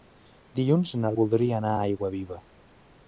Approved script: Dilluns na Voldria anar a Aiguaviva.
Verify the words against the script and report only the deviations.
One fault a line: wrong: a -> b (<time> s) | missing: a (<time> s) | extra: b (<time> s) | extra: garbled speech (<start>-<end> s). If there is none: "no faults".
no faults